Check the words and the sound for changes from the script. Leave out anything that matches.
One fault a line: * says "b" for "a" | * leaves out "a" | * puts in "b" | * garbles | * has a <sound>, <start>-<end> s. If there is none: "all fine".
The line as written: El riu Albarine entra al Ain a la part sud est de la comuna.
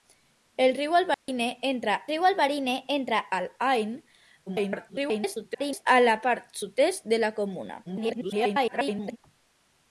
* has a dropout, 1.1-1.3 s
* puts in "riu Albarine entra"
* garbles
* garbles